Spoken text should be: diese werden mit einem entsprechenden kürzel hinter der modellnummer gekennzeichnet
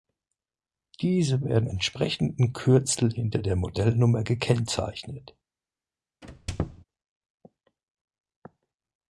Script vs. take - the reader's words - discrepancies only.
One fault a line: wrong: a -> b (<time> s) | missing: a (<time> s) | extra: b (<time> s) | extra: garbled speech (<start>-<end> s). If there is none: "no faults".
missing: mit einem (1.7 s)